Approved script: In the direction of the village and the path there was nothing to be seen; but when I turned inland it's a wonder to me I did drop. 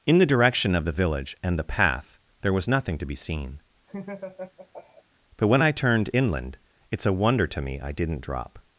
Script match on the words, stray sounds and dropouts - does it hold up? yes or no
no